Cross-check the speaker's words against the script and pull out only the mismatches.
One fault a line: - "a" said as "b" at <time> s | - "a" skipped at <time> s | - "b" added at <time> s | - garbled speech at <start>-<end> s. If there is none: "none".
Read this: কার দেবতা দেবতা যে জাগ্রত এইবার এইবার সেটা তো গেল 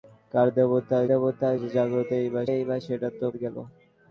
none